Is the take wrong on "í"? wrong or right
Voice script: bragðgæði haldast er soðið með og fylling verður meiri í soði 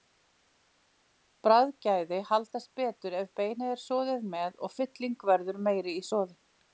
right